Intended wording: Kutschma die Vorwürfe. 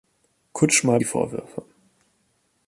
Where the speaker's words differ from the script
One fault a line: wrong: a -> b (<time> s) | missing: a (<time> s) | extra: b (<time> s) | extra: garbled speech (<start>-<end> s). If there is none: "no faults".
no faults